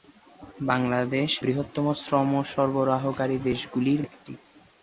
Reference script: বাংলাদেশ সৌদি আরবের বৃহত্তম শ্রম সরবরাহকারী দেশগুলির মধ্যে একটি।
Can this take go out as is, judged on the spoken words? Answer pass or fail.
fail